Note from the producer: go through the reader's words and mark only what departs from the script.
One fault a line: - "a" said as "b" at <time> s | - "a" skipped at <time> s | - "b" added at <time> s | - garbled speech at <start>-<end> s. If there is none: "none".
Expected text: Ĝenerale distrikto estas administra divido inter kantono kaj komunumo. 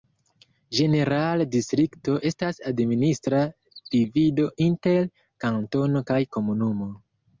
none